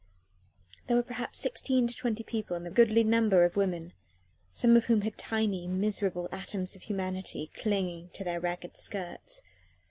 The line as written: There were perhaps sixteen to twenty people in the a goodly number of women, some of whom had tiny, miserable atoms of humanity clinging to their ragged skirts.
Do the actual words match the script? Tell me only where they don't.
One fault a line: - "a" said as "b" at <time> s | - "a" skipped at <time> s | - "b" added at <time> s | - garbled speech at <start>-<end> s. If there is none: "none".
none